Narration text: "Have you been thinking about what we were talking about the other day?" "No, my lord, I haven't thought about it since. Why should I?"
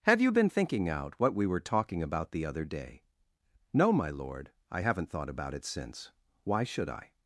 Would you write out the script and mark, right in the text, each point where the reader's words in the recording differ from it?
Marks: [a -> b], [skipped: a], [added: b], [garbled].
"Have you been thinking [about -> out] what we were talking about the other day?" "No, my lord, I haven't thought about it since. Why should I?"